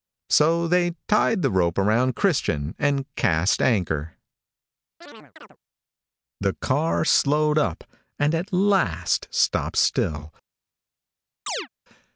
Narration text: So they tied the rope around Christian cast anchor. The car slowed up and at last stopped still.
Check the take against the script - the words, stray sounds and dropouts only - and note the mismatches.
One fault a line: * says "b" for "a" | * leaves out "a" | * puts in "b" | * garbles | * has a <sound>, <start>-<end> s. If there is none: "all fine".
* puts in "and"
* has a chirp, 5.0-5.6 s
* has a chirp, 11.5-11.7 s